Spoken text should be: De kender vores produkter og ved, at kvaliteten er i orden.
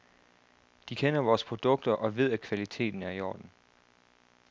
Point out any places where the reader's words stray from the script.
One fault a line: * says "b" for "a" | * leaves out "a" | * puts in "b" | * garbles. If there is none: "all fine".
all fine